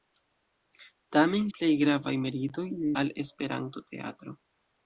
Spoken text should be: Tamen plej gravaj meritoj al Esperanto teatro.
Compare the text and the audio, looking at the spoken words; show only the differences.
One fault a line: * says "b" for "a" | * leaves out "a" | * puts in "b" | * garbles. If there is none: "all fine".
all fine